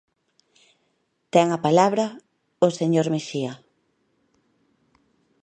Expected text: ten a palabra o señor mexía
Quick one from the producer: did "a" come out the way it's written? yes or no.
yes